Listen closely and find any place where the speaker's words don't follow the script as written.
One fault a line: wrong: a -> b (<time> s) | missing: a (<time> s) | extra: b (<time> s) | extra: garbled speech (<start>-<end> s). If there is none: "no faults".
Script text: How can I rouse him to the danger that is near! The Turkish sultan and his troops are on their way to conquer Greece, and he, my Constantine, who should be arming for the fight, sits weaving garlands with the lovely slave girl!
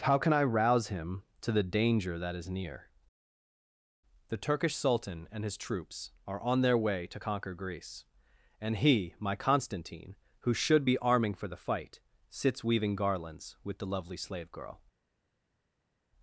no faults